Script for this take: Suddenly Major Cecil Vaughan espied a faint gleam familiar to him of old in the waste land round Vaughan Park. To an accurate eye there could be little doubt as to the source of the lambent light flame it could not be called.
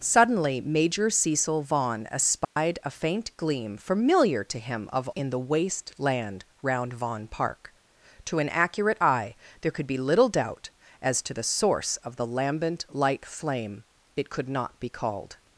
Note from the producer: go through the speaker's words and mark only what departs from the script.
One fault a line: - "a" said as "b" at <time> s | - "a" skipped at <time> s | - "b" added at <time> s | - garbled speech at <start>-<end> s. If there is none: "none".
- "old" skipped at 5.1 s